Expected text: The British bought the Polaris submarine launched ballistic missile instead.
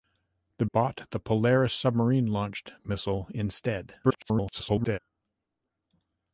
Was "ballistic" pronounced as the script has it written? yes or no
no